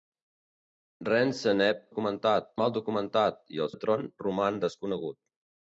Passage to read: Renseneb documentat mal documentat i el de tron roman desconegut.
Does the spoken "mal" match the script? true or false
true